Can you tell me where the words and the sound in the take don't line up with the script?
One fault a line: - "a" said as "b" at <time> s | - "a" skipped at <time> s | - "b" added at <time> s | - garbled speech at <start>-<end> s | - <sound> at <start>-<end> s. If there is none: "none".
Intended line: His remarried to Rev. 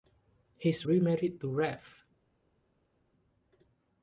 none